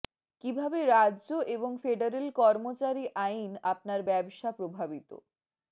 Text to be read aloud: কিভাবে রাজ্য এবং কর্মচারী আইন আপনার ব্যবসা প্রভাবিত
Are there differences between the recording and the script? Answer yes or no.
yes